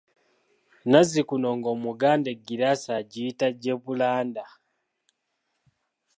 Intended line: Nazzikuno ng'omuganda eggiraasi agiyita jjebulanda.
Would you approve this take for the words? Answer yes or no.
yes